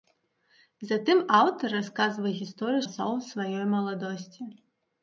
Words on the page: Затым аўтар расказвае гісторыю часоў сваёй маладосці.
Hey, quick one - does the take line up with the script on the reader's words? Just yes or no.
yes